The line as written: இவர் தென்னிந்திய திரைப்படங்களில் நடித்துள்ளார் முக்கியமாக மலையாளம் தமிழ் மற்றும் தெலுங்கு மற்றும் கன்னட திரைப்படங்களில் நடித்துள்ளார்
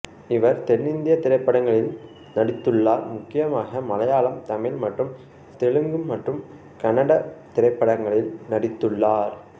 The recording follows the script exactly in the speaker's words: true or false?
true